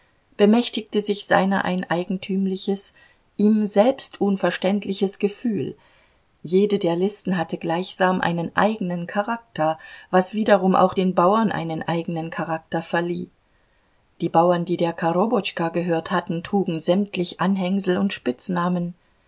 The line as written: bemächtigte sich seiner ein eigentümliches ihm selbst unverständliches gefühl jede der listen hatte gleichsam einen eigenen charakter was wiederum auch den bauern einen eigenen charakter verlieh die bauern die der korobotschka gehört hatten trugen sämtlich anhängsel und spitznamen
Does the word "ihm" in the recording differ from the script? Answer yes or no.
no